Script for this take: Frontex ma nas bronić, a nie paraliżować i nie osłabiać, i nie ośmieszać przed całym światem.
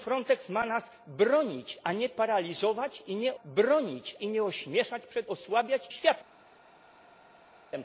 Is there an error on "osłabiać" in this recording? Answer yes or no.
yes